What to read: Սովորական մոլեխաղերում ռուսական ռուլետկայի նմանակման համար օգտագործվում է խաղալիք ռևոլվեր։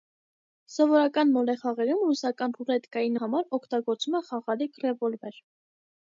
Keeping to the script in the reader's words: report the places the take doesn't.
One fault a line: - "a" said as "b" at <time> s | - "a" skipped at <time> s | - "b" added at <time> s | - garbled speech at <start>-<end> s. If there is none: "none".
- "նմանակման" skipped at 3.1 s